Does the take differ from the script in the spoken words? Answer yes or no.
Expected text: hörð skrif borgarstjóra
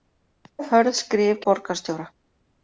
no